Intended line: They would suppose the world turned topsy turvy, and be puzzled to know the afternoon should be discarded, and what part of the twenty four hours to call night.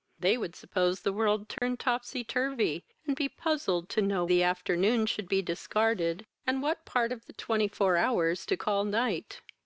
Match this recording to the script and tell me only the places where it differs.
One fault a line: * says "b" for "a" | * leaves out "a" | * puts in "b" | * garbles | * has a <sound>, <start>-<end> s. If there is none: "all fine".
* has a dropout, 1.6-1.6 s